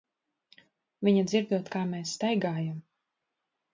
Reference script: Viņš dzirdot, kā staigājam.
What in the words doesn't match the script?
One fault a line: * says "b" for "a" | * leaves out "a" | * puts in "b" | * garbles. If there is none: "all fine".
* says "Viņa" for "Viņš"
* puts in "mēs"